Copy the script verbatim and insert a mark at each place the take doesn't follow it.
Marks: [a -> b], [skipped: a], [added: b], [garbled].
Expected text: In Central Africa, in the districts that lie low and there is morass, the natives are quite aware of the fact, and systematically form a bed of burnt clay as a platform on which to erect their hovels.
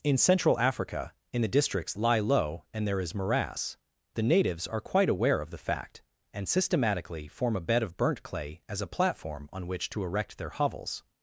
In Central Africa, in the districts [skipped: that] lie low and there is morass, the natives are quite aware of the fact, and systematically form a bed of burnt clay as a platform on which to erect their hovels.